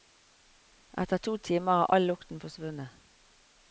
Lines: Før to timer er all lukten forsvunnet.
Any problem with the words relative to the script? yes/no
yes